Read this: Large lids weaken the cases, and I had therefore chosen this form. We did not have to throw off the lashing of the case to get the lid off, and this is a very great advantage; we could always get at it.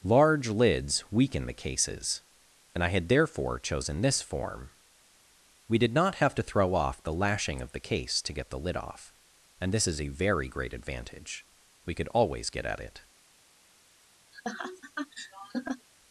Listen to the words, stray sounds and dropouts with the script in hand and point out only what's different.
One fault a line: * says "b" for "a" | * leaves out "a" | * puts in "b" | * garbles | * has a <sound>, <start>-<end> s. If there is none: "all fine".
* has a laugh, 14.3-15.9 s